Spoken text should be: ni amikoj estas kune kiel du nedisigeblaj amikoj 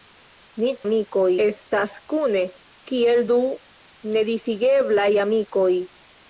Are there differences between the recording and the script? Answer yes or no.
no